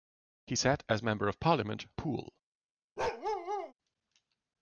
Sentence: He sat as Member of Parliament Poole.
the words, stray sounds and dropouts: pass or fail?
fail